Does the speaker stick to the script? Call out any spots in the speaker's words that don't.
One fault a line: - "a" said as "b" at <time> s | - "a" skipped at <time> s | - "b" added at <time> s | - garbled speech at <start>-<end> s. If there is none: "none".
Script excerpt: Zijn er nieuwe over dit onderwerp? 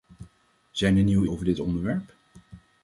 none